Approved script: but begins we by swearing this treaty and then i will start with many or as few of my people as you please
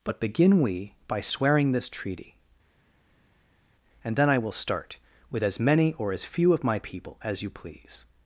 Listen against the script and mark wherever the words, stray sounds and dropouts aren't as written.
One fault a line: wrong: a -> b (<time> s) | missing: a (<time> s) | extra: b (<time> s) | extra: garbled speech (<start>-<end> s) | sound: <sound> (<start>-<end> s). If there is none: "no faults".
wrong: begins -> begin (0.2 s)
extra: as (5.4 s)